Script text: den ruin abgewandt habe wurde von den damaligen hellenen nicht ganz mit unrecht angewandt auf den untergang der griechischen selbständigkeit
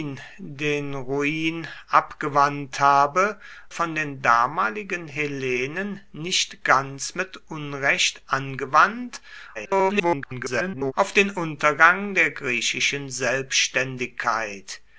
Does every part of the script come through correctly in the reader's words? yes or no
no